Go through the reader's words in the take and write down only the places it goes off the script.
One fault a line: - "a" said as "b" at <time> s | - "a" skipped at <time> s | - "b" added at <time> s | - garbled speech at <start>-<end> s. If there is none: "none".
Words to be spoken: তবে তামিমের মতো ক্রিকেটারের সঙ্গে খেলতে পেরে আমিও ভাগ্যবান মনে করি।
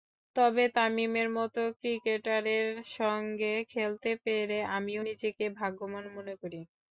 - "নিজেকে" added at 5.1 s